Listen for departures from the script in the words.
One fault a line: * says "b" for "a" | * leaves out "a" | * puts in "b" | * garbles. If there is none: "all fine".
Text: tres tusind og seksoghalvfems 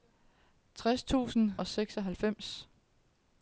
all fine